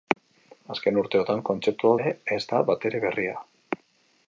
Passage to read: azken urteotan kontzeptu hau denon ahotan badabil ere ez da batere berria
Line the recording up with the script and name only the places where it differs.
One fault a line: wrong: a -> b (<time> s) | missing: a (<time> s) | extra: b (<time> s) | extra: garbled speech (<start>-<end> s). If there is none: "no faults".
missing: denon ahotan badabil (2.0 s)